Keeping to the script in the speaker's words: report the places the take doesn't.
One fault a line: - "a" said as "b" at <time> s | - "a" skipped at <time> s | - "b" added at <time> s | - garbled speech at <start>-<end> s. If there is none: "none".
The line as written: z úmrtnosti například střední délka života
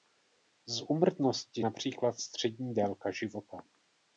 none